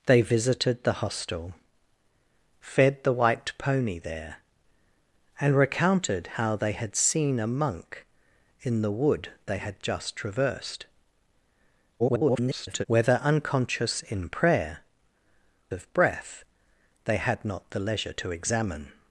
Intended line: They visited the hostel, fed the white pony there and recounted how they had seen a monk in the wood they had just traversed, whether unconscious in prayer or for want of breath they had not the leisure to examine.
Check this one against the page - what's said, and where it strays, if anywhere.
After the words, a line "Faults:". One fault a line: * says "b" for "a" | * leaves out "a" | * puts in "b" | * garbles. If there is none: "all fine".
They visited the hostel, fed the white pony there and recounted how they had seen a monk in the wood they had just traversed, [garbled] whether unconscious in prayer of breath they had not the leisure to examine.
Faults:
* garbles
* leaves out "or for want"